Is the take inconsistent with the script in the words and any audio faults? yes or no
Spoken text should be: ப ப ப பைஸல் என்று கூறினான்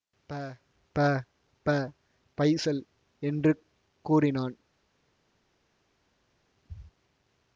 no